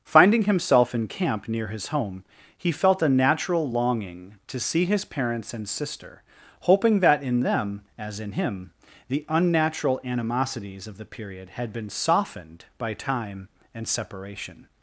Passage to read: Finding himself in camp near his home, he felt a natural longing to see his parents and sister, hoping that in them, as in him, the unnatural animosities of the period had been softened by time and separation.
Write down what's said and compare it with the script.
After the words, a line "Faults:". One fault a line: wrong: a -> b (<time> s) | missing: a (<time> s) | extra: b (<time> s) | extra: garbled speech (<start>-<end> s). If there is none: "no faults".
Finding himself in camp near his home, he felt a natural longing to see his parents and sister, hoping that in them, as in him, the unnatural animosities of the period had been softened by time and separation.
Faults:
no faults